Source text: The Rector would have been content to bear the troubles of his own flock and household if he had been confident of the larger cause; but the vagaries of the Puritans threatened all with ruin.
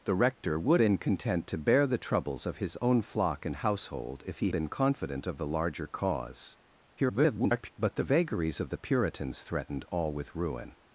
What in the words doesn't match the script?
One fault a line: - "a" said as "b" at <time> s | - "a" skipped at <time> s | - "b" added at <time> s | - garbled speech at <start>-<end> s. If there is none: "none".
- "have" skipped at 0.8 s
- "had" skipped at 4.5 s
- garbled speech at 7.0-7.7 s